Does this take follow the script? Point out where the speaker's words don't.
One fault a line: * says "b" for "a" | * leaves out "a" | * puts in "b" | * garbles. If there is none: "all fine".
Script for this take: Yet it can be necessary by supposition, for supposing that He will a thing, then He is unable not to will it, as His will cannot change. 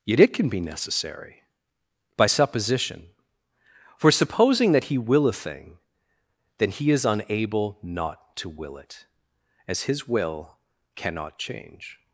all fine